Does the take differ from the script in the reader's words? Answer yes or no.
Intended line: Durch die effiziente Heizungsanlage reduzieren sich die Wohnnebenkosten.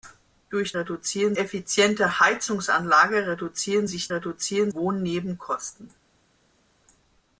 yes